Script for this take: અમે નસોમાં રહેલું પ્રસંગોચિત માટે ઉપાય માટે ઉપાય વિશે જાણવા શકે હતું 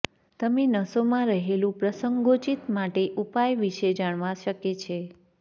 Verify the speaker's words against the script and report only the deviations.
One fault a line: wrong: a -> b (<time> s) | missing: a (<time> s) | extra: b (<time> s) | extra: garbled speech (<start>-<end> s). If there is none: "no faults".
wrong: અમે -> તમે (0.4 s)
missing: માટે ઉપાય (3.6 s)
wrong: હતું -> છે (4.8 s)